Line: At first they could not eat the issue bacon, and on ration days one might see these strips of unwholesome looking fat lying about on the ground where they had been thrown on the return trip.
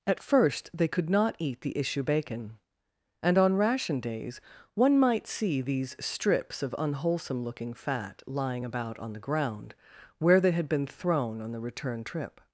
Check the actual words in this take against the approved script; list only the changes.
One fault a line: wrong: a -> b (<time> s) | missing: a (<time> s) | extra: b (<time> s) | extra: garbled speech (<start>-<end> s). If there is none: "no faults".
no faults